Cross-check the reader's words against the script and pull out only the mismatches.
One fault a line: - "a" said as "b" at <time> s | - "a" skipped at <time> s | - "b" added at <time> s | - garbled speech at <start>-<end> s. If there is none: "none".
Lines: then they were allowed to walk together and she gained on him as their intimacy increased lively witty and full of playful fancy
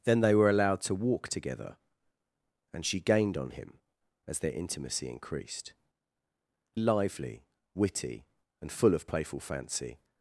none